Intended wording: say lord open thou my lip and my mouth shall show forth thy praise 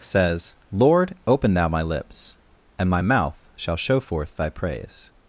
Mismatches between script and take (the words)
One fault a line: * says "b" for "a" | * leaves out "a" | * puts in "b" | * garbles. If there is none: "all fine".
* says "says" for "say"
* says "lips" for "lip"